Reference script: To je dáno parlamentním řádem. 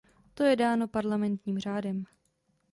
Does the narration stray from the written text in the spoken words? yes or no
no